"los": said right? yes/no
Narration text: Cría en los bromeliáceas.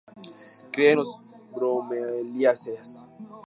no